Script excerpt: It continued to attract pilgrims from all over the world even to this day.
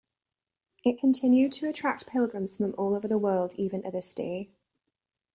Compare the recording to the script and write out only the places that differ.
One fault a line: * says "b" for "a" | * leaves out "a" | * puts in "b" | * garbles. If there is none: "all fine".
all fine